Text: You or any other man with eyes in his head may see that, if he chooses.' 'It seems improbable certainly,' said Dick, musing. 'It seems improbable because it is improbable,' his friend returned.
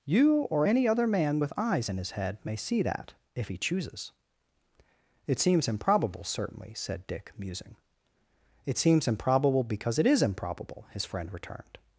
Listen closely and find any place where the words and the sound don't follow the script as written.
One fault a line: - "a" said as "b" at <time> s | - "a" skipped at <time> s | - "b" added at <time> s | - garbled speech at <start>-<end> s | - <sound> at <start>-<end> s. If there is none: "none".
none